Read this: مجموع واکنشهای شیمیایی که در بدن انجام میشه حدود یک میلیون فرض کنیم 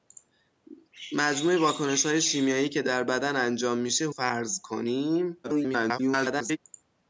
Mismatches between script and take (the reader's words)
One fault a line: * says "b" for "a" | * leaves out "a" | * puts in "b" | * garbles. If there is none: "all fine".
* leaves out "حدود یک میلیون"
* garbles